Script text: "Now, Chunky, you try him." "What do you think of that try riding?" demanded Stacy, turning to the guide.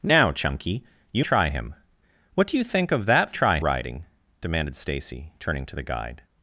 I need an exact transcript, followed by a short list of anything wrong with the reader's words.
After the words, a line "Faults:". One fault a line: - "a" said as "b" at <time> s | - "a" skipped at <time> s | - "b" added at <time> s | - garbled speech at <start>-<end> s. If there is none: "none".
"Now, Chunky, you try him." "What do you think of that try riding?" demanded Stacy, turning to the guide.
Faults:
none